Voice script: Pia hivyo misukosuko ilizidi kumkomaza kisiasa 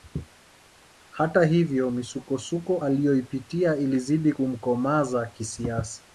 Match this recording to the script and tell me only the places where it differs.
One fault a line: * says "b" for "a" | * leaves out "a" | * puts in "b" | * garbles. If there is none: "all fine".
* says "Hata" for "Pia"
* puts in "aliyoipitia"